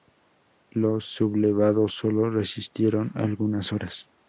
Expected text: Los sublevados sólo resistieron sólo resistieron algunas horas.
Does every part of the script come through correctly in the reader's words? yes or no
no